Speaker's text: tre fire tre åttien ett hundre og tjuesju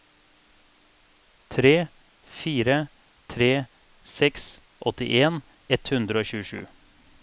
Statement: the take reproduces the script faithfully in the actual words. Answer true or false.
false